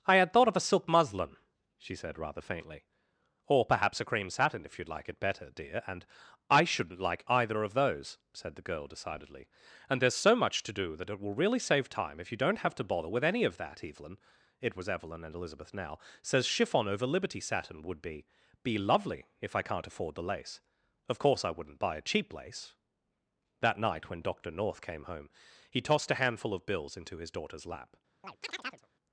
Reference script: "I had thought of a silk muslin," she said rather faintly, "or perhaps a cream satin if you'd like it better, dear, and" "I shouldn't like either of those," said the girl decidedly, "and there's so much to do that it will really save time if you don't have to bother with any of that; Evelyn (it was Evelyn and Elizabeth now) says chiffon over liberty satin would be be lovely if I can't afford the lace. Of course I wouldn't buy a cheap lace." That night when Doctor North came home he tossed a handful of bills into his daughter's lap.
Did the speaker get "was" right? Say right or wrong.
right